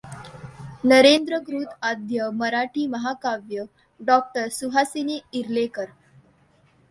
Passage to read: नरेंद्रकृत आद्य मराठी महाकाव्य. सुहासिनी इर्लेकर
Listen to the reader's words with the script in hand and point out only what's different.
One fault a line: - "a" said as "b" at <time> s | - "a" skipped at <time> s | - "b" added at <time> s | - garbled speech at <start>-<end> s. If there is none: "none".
- "डॉ" added at 4.0 s